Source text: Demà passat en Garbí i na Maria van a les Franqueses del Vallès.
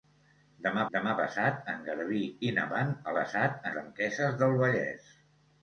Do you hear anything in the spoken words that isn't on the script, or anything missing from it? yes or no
yes